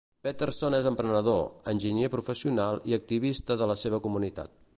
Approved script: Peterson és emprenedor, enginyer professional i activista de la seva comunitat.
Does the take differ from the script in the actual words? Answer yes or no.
no